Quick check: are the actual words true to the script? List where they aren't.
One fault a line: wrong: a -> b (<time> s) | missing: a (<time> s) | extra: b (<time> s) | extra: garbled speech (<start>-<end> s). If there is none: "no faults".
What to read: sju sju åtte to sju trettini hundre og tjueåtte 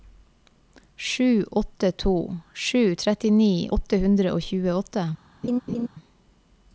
missing: sju (1.4 s)
extra: åtte (3.8 s)